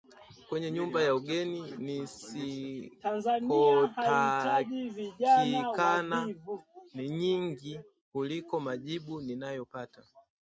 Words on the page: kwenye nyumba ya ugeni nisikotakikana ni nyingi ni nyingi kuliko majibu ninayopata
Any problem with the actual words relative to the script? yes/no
yes